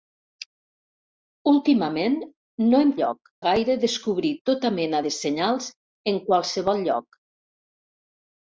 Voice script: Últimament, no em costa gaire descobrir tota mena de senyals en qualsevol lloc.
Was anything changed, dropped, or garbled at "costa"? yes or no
yes